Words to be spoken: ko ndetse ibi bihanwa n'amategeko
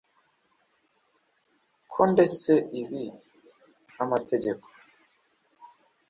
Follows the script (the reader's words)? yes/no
no